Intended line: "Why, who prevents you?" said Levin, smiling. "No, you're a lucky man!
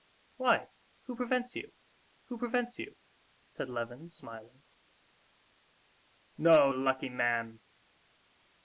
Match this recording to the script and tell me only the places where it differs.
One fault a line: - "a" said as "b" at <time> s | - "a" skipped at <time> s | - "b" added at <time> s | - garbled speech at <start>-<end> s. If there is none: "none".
- "who prevents you" added at 2.2 s
- "you're" skipped at 6.7 s